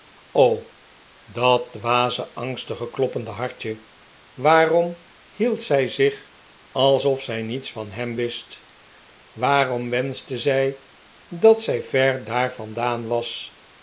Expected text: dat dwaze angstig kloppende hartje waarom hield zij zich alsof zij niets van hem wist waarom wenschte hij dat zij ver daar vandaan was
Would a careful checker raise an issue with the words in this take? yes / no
yes